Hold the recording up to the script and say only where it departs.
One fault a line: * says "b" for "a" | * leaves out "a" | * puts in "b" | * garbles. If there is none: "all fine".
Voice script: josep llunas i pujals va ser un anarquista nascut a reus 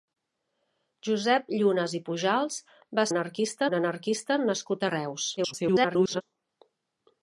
* says "anarquista" for "ser"
* garbles